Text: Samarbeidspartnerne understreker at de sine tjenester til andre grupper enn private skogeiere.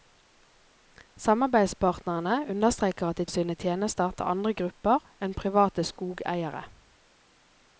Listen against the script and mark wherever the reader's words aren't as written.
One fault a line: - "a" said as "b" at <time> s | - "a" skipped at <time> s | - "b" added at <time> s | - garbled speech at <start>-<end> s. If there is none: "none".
none